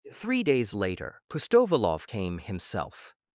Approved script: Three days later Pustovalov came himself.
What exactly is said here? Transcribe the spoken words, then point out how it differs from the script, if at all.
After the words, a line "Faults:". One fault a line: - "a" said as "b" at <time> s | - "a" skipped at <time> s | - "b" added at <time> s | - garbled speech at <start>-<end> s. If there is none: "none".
Three days later Pustovalov came himself.
Faults:
none